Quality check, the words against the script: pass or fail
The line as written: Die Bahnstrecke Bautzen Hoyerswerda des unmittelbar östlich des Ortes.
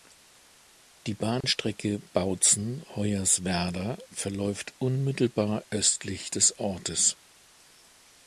fail